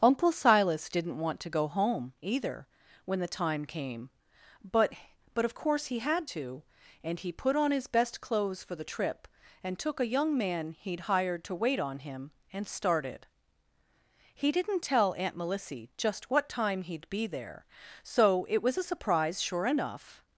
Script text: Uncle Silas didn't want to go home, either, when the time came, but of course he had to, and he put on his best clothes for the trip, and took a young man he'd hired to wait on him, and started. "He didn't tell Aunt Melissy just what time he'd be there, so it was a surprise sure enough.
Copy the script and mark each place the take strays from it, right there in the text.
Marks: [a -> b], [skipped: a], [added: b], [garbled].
Uncle Silas didn't want to go home, either, when the time came, but [added: but] of course he had to, and he put on his best clothes for the trip, and took a young man he'd hired to wait on him, and started. "He didn't tell Aunt Melissy just what time he'd be there, so it was a surprise sure enough.